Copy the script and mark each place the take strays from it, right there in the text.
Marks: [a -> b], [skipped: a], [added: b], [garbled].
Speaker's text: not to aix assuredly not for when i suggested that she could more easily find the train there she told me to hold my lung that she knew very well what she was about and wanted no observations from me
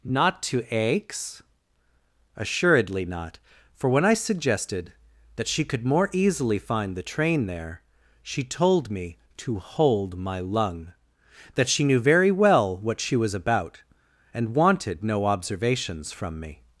not to aix assuredly not for when i suggested that she could more easily find the train there she told me to hold my lung that she knew very well what she was about and wanted no observations from me